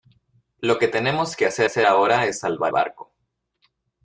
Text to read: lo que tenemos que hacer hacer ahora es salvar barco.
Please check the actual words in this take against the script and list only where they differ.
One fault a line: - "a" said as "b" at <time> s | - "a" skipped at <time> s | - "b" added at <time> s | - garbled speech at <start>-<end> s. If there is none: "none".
none